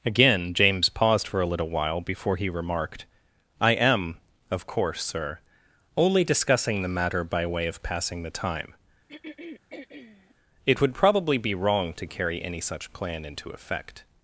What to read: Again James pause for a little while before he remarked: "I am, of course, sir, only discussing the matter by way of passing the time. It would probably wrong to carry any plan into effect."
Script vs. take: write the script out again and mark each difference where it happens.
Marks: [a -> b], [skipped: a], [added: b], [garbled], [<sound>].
Again James [pause -> paused] for a little while before he remarked: "I am, of course, sir, only discussing the matter by way of passing the time. [throat clearing] It would probably [added: be] wrong to carry any [added: such] plan into effect."